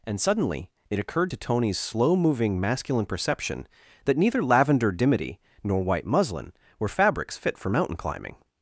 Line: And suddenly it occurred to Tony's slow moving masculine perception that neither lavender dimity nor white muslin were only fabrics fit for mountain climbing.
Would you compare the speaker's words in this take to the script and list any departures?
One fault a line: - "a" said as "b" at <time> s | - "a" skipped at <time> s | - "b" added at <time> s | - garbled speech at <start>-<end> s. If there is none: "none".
- "only" skipped at 6.9 s